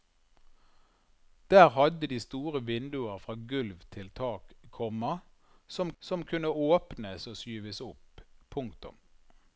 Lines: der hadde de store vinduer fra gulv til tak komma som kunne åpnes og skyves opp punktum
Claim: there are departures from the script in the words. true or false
true